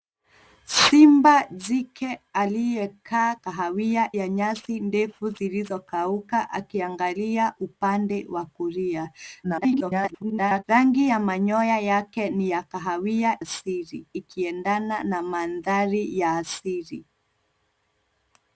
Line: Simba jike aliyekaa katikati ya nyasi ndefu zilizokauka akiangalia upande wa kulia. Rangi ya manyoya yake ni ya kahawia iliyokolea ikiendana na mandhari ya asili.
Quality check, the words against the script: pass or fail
fail